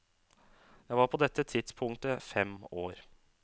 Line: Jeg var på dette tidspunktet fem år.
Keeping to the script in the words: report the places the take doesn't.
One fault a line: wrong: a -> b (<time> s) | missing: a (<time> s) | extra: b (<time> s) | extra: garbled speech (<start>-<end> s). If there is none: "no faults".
no faults